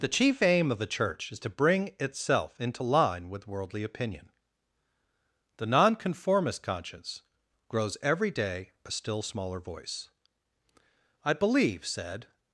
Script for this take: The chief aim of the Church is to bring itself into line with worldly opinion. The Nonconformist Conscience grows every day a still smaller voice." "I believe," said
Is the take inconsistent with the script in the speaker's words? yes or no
no